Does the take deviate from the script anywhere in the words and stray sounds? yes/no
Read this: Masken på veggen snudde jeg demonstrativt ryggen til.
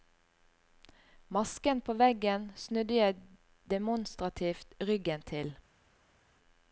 no